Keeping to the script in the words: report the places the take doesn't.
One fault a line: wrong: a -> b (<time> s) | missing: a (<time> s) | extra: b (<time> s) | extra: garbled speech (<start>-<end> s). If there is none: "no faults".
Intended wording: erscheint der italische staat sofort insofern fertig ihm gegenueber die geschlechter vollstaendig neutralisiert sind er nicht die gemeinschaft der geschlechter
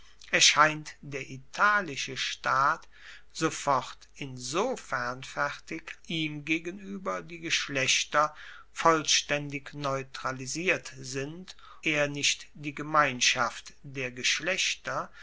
no faults